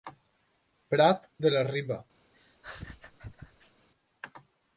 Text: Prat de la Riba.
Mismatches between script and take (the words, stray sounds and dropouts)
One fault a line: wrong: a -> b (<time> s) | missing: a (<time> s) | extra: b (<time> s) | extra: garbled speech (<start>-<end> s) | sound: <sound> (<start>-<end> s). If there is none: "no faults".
sound: laugh (2.3-3.9 s)